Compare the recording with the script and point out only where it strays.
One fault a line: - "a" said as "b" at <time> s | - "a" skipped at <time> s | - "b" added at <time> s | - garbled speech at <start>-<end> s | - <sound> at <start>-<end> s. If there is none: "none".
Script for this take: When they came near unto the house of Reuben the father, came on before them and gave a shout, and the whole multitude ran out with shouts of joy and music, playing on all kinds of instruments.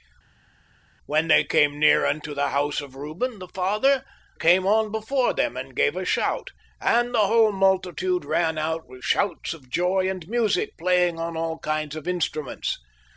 none